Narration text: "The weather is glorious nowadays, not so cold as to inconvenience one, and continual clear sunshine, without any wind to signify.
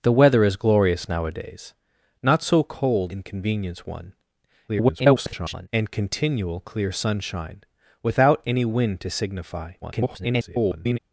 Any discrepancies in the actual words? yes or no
yes